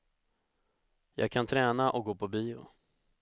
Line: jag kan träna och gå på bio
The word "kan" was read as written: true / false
true